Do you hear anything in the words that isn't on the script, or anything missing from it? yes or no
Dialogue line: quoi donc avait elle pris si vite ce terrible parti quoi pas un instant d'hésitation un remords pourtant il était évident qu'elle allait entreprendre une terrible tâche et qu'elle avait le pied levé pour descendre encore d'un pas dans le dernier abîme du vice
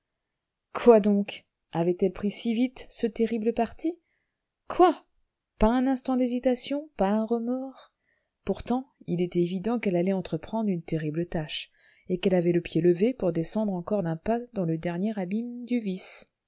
yes